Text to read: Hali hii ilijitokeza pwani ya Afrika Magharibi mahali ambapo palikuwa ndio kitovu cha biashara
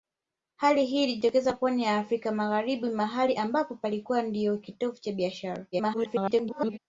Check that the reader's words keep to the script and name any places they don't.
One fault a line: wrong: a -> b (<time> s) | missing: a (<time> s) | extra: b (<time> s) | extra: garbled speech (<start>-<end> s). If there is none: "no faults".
extra: garbled speech (5.7-6.8 s)